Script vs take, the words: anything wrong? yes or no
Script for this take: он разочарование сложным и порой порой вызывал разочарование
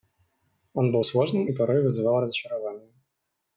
yes